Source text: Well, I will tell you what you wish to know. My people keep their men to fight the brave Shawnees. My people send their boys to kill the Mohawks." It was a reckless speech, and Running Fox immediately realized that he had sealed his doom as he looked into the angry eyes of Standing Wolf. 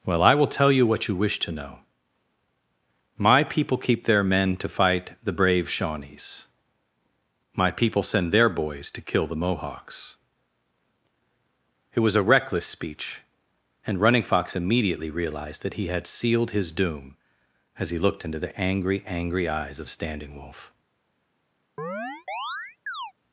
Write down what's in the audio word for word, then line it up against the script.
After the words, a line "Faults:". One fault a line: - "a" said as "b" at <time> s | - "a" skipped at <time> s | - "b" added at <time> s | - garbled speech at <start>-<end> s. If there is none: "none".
Well, I will tell you what you wish to know. My people keep their men to fight the brave Shawnees. My people send their boys to kill the Mohawks." It was a reckless speech, and Running Fox immediately realized that he had sealed his doom as he looked into the angry angry eyes of Standing Wolf.
Faults:
- "angry" added at 19.1 s